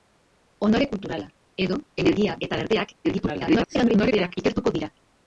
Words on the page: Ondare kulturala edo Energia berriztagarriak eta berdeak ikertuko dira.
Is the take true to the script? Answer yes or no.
no